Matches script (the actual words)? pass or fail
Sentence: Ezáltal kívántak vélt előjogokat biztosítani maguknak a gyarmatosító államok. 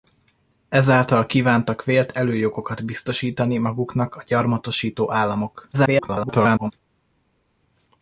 fail